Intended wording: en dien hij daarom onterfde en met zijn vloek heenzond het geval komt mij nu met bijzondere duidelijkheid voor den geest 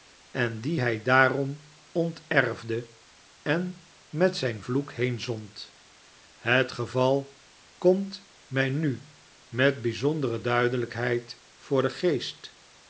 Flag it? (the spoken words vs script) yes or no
no